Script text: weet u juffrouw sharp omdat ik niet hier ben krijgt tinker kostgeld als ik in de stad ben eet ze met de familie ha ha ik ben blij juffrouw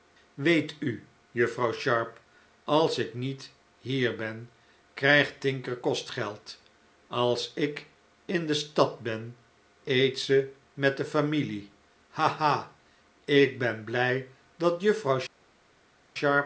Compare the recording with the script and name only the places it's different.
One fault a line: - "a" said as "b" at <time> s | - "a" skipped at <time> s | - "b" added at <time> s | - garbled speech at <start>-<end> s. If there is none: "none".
- "omdat" said as "als" at 2.6 s
- "dat" added at 14.6 s